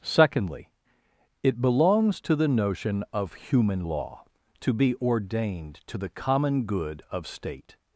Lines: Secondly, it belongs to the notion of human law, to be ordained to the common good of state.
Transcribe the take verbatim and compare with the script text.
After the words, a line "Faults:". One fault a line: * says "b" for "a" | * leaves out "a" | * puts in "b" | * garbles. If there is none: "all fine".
Secondly, it belongs to the notion of human law, to be ordained to the common good of state.
Faults:
all fine